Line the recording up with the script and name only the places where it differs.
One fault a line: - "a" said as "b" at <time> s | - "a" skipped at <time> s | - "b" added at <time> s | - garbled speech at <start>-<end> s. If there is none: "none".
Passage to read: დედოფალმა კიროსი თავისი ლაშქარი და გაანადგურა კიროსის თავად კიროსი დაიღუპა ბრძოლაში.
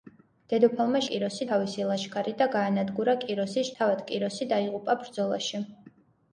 none